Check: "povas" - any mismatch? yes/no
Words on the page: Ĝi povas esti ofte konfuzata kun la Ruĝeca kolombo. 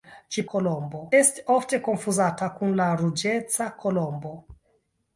yes